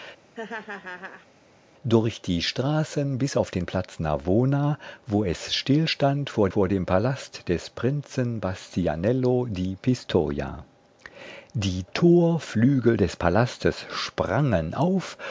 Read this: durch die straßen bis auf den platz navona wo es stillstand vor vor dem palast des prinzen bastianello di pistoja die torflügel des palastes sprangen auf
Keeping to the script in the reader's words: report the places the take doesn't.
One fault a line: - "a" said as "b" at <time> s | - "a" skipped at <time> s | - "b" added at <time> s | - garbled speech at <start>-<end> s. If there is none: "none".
none